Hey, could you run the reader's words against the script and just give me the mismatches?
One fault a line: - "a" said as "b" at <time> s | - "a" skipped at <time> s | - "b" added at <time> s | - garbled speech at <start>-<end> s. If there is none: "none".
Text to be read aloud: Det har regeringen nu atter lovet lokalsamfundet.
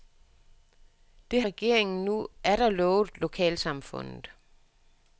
- "har" skipped at 1.4 s